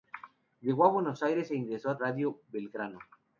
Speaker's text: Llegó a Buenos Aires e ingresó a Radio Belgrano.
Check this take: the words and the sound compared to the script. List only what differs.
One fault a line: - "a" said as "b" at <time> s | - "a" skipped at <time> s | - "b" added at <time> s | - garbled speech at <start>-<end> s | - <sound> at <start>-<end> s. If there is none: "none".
none